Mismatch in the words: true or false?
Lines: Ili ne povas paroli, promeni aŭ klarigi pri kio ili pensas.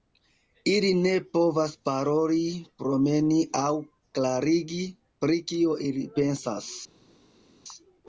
false